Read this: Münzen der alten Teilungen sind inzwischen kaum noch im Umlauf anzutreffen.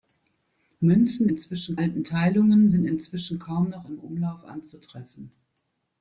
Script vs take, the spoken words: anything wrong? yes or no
yes